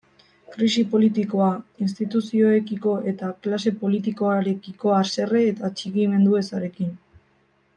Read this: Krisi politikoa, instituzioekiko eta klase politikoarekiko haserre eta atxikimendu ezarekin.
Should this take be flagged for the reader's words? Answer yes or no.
no